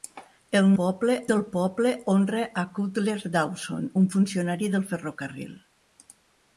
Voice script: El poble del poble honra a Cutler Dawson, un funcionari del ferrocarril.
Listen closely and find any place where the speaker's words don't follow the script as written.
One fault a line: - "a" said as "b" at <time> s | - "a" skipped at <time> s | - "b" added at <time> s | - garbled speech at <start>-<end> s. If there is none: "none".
none